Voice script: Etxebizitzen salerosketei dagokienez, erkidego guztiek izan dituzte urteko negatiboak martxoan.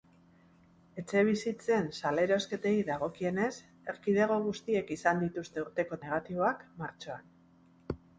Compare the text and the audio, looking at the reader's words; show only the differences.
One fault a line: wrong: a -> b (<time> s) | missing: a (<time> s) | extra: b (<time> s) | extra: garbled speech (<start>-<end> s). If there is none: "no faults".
no faults